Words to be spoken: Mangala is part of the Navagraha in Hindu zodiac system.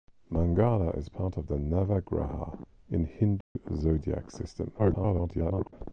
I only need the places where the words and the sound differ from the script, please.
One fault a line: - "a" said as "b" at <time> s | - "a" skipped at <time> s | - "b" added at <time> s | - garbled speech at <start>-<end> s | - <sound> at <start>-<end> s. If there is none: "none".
- dropout at 3.4-3.6 s
- garbled speech at 4.8-5.7 s